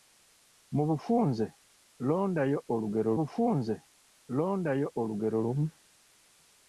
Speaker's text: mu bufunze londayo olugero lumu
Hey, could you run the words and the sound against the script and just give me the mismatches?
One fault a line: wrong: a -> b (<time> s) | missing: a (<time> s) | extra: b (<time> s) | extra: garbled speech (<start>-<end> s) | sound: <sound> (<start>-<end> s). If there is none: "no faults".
extra: bufunze londayo olugero (3.2 s)